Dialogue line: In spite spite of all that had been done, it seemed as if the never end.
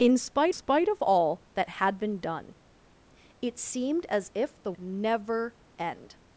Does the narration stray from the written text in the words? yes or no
no